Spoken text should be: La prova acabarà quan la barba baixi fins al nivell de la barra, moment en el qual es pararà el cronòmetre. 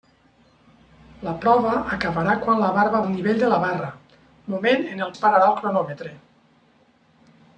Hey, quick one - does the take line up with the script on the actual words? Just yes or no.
no